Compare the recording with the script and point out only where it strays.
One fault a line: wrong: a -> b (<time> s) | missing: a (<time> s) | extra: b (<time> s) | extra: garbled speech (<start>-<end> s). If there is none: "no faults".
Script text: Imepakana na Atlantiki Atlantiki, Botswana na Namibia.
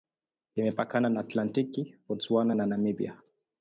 missing: Atlantiki (1.9 s)